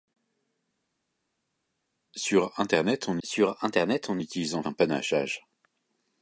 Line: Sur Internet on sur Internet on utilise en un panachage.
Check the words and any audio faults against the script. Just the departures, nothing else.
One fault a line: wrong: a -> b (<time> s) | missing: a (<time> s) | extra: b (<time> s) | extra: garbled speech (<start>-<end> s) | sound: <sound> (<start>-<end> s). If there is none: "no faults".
no faults